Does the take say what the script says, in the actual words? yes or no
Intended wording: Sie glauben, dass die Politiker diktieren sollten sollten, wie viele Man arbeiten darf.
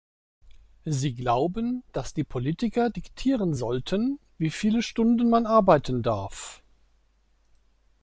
no